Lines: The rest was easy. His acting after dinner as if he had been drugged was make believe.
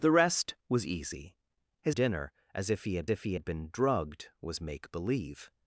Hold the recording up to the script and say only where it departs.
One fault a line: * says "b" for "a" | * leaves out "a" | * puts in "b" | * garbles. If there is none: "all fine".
* says "dinner as if he had" for "acting after dinner as"